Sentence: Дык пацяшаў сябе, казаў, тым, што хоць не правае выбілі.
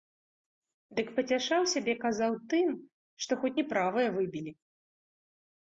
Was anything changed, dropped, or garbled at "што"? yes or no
no